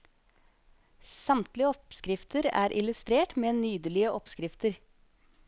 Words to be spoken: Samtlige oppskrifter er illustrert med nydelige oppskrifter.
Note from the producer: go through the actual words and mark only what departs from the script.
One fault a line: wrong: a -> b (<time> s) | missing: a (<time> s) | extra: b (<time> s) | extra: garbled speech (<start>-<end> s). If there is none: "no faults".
no faults